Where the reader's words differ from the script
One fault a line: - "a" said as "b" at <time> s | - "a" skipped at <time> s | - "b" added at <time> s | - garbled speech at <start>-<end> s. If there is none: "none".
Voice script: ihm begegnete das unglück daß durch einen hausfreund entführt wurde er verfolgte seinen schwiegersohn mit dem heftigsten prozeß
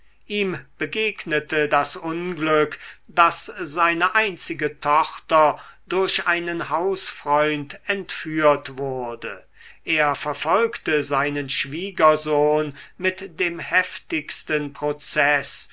- "seine einzige tochter" added at 3.6 s